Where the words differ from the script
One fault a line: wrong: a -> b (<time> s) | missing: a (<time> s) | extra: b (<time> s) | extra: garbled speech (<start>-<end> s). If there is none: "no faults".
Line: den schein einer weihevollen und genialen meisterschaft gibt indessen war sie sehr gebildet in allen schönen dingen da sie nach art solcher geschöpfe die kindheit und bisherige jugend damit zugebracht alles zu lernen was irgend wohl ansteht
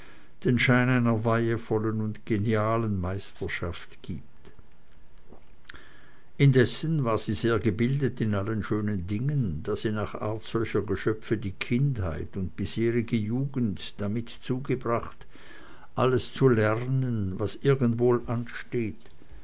no faults